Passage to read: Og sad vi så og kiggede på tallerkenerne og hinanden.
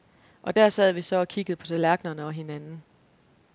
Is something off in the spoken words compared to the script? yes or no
yes